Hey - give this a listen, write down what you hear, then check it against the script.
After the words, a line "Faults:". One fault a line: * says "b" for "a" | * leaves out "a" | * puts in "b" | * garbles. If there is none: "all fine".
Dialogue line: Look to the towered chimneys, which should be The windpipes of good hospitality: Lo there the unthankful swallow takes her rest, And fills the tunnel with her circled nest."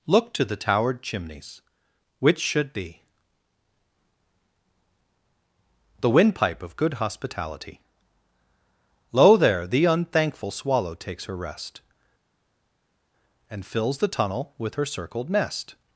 Look to the towered chimneys, which should be The windpipe of good hospitality: Lo there the unthankful swallow takes her rest, And fills the tunnel with her circled nest."
Faults:
* says "windpipe" for "windpipes"